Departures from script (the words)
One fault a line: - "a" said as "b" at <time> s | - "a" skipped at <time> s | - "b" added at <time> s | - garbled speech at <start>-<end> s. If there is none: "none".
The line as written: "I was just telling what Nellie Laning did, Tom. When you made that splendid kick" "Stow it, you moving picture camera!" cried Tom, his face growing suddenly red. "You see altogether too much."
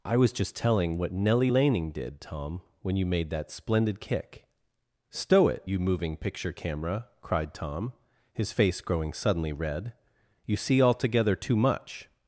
none